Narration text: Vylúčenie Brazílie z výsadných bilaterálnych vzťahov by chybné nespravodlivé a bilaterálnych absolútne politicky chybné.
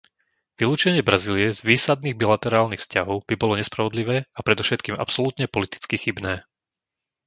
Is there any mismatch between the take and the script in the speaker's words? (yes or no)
yes